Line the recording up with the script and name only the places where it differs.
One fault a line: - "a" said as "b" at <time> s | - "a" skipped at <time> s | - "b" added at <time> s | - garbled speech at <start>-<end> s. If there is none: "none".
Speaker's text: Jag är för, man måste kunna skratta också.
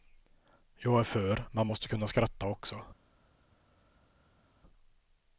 none